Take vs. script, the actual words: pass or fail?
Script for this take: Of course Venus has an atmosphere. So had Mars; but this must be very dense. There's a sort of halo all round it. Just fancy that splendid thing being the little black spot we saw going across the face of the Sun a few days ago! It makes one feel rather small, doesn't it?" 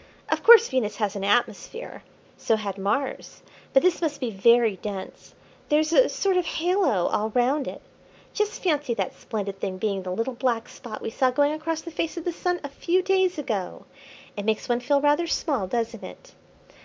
pass